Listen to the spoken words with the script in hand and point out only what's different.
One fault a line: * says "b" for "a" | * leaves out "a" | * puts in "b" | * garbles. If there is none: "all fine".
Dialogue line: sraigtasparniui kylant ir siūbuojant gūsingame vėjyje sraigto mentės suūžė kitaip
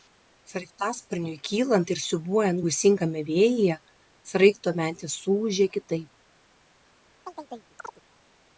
all fine